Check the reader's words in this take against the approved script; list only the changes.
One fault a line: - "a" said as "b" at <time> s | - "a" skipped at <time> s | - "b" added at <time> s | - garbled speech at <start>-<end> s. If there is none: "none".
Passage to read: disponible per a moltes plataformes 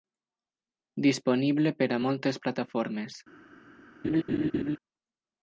none